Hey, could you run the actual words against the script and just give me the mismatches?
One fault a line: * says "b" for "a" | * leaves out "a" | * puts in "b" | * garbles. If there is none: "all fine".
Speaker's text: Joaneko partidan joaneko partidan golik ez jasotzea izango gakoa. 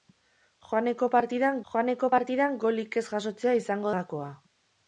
all fine